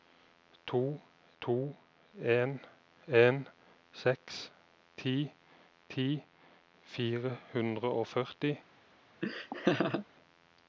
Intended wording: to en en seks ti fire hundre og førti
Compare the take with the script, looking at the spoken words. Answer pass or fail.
fail